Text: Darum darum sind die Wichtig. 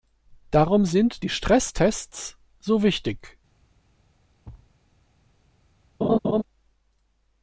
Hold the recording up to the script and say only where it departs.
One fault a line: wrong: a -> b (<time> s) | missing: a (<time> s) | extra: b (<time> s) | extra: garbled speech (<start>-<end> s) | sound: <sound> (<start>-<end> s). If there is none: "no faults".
missing: darum (0.8 s)
extra: Stresstests so (1.3 s)
sound: thud (4.4-4.7 s)
sound: laugh (6.0-6.4 s)